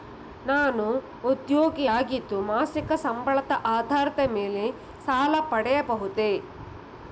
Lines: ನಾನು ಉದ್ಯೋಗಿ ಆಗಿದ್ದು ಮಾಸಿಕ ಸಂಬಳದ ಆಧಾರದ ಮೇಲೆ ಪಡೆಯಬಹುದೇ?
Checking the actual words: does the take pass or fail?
fail